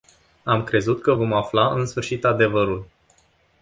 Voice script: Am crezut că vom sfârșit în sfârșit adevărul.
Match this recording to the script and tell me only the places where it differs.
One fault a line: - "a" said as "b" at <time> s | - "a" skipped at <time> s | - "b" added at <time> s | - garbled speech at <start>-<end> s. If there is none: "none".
- "sfârșit" said as "afla" at 1.3 s